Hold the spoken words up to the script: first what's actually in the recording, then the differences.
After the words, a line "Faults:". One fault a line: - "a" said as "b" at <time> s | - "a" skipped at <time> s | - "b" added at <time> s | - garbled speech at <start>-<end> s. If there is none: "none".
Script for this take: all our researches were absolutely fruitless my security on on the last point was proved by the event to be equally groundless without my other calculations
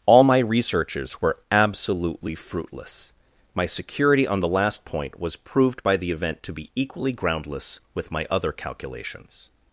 all my researches were absolutely fruitless my security on the last point was proved by the event to be equally groundless with my other calculations
Faults:
- "our" said as "my" at 0.2 s
- "on" skipped at 4.4 s
- "without" said as "with" at 7.9 s